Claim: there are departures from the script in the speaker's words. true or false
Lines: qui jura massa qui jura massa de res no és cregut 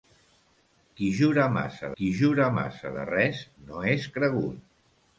false